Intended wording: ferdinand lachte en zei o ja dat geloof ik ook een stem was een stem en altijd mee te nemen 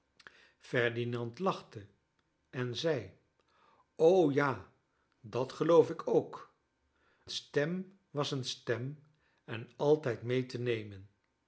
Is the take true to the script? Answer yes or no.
no